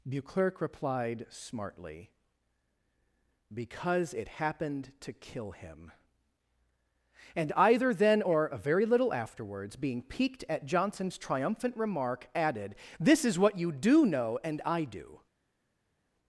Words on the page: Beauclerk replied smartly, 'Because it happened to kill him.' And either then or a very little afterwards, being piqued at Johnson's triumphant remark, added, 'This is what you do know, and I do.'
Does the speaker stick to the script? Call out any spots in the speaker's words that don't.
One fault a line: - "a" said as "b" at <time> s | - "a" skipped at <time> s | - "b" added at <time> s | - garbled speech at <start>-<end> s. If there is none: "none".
none